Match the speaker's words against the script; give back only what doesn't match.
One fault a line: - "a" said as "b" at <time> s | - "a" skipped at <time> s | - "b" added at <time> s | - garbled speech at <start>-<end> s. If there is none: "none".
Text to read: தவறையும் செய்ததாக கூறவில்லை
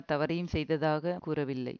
none